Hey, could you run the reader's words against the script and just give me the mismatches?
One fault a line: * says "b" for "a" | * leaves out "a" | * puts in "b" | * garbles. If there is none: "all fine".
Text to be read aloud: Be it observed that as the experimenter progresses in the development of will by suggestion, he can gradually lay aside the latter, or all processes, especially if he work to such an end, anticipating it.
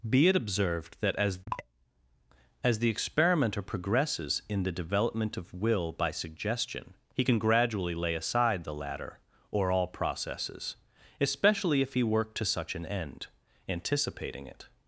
* puts in "as"